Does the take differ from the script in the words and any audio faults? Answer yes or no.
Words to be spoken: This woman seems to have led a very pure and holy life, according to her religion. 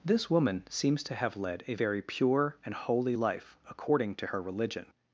no